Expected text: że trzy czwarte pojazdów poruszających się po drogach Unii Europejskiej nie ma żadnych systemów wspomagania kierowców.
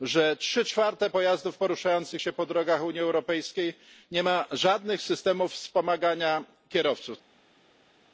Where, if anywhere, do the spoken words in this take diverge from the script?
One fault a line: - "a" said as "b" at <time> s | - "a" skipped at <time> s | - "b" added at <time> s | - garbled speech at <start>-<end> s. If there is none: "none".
none